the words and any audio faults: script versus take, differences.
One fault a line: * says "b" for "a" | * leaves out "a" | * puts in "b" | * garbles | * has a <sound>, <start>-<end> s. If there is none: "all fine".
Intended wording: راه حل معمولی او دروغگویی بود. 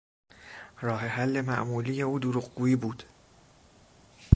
all fine